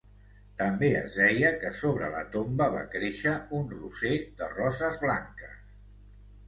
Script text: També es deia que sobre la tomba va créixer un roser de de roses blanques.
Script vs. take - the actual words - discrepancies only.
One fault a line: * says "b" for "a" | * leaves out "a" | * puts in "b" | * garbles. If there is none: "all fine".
* leaves out "de"